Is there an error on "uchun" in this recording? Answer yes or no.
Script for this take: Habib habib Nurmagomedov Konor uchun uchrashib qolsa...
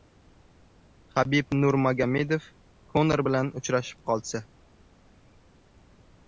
yes